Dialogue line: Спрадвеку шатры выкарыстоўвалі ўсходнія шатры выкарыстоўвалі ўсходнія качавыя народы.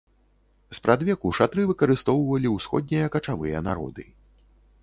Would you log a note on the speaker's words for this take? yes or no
yes